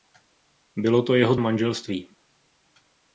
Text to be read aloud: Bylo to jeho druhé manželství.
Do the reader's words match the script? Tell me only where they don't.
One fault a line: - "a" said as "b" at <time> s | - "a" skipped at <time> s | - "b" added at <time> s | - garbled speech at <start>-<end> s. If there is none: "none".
- "druhé" skipped at 1.4 s